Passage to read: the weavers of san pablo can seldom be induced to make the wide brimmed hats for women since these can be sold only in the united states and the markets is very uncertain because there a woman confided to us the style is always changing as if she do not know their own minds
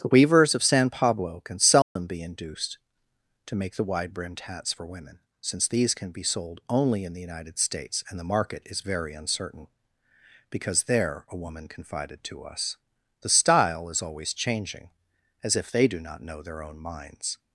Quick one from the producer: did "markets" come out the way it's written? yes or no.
no